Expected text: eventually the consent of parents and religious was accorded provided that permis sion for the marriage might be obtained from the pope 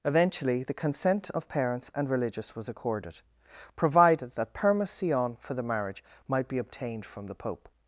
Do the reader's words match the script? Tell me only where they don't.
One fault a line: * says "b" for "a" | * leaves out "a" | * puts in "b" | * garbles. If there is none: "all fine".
all fine